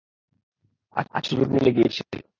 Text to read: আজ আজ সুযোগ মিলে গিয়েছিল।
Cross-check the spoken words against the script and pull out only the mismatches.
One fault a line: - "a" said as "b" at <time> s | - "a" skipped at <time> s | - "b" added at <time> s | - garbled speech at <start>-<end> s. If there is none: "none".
none